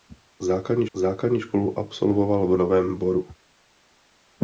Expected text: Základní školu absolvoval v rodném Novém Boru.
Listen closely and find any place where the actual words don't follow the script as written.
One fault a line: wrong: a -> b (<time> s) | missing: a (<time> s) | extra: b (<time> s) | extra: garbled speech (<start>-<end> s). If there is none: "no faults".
extra: základní (1.0 s)
missing: rodném (2.5 s)